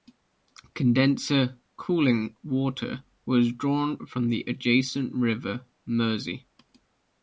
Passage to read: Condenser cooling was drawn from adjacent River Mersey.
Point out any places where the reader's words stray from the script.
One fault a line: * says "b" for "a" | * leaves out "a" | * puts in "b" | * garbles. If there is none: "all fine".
* puts in "water"
* puts in "the"